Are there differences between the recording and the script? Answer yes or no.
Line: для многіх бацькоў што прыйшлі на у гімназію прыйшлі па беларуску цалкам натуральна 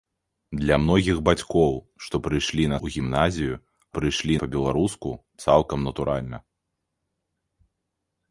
no